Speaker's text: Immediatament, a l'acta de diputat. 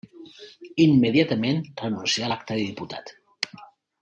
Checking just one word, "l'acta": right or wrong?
right